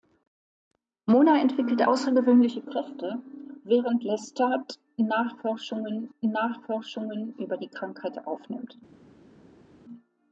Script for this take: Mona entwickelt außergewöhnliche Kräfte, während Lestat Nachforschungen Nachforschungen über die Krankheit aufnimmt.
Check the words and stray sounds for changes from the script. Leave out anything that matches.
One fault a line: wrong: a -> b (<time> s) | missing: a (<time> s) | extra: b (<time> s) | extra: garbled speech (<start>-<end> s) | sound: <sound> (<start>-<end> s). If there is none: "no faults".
no faults